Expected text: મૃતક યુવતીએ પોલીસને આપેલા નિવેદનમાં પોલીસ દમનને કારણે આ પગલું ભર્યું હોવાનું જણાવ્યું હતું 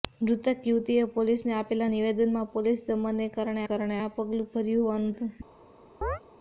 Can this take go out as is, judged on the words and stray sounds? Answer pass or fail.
fail